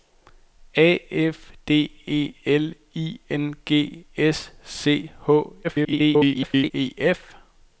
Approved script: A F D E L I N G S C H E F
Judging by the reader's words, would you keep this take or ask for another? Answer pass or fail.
fail